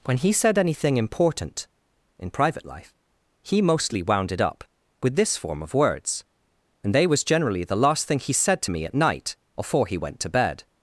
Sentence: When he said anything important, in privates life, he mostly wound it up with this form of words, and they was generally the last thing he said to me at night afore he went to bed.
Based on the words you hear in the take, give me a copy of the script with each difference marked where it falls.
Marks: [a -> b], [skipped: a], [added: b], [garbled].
When he said anything important, in [privates -> private] life, he mostly wound it up with this form of words, and they was generally the last thing he said to me at night afore he went to bed.